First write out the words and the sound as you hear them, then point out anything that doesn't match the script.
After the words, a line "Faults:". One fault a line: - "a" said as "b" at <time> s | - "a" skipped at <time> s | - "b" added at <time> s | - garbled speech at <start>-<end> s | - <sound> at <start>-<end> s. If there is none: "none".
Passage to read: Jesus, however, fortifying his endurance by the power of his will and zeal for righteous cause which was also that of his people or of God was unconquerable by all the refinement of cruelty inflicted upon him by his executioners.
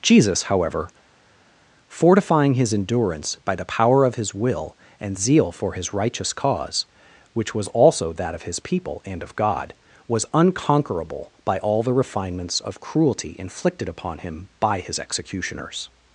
Jesus, however, fortifying his endurance by the power of his will and zeal for his righteous cause which was also that of his people and of God was unconquerable by all the refinements of cruelty inflicted upon him by his executioners.
Faults:
- "his" added at 5.7 s
- "or" said as "and" at 9.0 s
- "refinement" said as "refinements" at 11.9 s